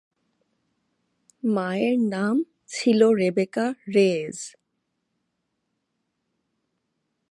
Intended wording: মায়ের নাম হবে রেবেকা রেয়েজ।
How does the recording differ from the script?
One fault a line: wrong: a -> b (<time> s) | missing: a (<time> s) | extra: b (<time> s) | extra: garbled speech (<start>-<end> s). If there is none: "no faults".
wrong: হবে -> ছিল (2.7 s)